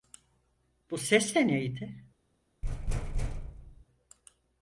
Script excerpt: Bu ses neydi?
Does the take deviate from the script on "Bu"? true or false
false